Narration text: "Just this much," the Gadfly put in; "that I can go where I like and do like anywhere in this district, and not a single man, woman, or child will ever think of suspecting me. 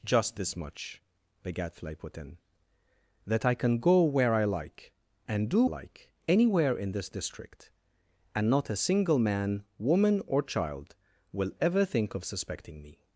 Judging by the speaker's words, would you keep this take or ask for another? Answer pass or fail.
pass